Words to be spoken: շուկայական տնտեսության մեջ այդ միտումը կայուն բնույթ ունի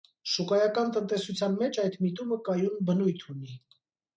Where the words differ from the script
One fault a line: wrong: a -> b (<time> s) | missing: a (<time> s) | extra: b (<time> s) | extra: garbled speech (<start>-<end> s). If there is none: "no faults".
no faults